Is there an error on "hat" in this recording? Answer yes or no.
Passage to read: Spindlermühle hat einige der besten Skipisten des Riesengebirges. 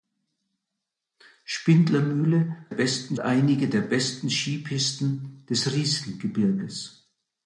yes